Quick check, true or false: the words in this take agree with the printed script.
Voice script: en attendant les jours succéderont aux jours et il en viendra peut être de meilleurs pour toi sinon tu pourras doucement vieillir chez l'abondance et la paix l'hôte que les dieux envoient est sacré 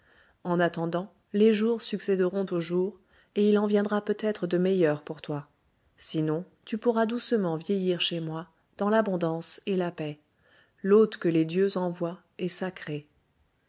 false